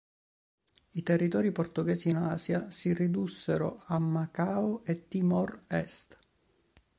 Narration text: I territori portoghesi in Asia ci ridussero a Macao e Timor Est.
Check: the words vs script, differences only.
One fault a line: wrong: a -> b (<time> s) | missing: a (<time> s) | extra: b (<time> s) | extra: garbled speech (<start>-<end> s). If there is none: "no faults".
wrong: ci -> si (2.7 s)